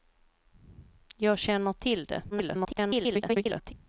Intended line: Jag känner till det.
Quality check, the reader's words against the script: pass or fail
fail